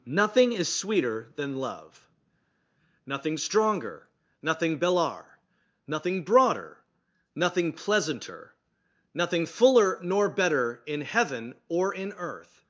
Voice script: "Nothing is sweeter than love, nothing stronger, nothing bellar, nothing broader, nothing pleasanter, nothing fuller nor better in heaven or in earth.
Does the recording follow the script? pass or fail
pass